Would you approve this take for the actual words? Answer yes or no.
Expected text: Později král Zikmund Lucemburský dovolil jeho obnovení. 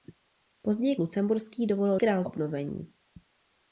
no